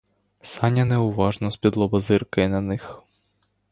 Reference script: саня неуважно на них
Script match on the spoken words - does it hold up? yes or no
no